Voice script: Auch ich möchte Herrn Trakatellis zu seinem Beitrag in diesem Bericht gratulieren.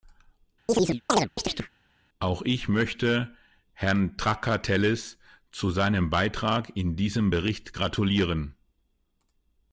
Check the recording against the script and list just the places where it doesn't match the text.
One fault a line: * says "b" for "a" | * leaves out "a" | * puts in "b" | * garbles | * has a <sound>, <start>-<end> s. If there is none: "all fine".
* has a chirp, 0.7-1.7 s